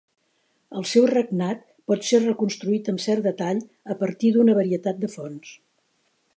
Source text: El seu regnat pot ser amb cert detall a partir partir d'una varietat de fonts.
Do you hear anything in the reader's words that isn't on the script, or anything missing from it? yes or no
yes